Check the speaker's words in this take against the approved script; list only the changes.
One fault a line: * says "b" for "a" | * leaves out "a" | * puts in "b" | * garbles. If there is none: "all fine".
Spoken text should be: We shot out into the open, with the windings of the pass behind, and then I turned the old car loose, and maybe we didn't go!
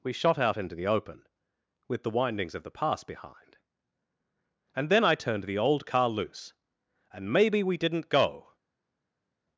all fine